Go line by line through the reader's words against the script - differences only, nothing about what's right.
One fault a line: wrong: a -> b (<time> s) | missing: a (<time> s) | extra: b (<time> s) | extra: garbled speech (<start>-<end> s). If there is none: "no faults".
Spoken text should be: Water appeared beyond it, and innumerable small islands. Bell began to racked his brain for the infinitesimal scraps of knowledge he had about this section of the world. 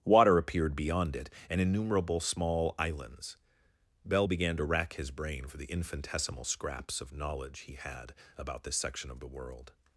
wrong: racked -> rack (4.6 s)